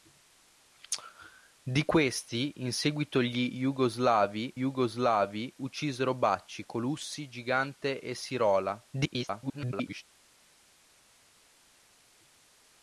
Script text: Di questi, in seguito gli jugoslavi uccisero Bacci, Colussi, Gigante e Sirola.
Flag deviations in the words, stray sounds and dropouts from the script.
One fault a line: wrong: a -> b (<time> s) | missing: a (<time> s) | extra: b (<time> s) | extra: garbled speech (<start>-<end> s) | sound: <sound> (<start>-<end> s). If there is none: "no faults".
extra: jugoslavi (4.6 s)
extra: garbled speech (8.9-10.0 s)